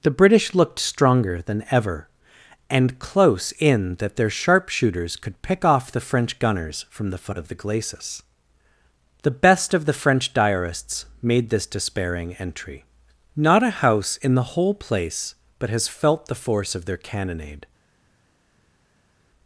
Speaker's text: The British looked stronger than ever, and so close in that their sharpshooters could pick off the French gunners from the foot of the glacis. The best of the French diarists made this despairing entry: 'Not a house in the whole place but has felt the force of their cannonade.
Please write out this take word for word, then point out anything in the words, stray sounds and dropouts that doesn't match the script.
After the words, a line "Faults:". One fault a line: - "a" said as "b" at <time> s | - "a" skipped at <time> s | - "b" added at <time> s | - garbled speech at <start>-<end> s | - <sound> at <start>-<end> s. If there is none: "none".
The British looked stronger than ever, and close in that their sharpshooters could pick off the French gunners from the foot of the glacis. The best of the French diarists made this despairing entry: 'Not a house in the whole place but has felt the force of their cannonade.
Faults:
- "so" skipped at 3.0 s